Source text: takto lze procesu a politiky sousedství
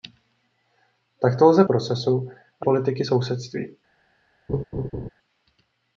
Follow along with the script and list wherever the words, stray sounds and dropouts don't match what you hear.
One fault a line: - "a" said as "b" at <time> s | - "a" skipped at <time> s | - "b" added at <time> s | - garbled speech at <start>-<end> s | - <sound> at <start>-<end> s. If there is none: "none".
- laugh at 4.5-5.1 s